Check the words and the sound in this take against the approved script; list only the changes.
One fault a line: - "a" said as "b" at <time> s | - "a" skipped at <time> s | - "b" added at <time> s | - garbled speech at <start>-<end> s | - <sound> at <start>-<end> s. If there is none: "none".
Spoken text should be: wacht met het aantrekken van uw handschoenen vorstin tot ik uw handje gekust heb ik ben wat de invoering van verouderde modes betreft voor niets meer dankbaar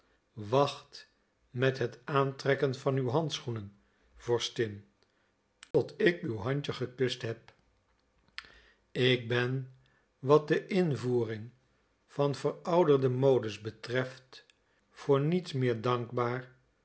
- dropout at 5.7-5.7 s